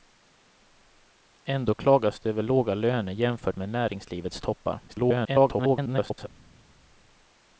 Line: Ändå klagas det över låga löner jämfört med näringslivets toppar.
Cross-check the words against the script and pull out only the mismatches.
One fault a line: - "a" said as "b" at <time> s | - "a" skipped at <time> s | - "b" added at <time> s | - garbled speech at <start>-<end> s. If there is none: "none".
- garbled speech at 4.9-6.3 s